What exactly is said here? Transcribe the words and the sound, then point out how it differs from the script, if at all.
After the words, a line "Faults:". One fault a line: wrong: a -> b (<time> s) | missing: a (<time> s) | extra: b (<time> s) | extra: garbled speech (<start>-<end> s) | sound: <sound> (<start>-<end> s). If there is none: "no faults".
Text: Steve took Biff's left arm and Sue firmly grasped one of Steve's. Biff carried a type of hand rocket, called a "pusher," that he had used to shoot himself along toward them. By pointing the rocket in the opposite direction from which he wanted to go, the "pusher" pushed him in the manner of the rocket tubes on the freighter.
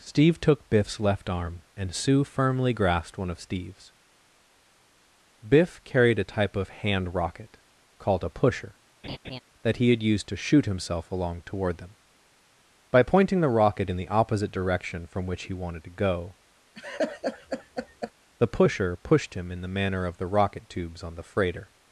Steve took Biff's left arm and Sue firmly grasped one of Steve's. Biff carried a type of hand rocket, called a "pusher," that he had used to shoot himself along toward them. By pointing the rocket in the opposite direction from which he wanted to go, the "pusher" pushed him in the manner of the rocket tubes on the freighter.
Faults:
sound: laugh (9.0-9.4 s)
sound: laugh (16.7-18.1 s)